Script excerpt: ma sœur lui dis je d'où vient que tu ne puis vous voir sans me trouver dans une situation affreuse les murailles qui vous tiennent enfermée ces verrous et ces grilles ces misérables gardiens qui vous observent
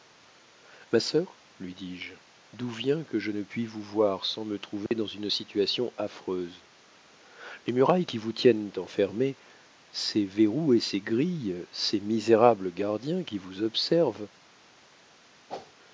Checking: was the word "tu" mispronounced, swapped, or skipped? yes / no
yes